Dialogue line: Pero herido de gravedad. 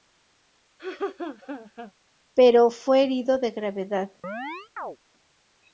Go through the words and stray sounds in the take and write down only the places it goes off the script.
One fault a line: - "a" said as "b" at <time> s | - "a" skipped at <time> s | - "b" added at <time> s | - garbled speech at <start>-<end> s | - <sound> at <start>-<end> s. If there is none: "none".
- laugh at 0.8-1.9 s
- "fue" added at 2.7 s
- chirp at 4.2-5.0 s